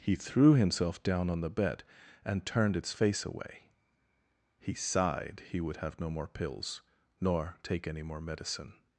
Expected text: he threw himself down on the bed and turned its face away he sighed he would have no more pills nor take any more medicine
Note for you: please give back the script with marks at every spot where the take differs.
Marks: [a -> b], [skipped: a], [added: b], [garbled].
he threw himself down on the bed and turned its face away he sighed he would have no more pills nor take any more medicine